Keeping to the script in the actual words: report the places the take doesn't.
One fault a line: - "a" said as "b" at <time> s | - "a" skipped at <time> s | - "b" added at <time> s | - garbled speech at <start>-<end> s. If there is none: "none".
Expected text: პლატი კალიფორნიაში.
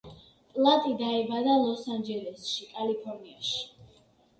- "დაიბადა ლოს ანჯელესში" added at 1.0 s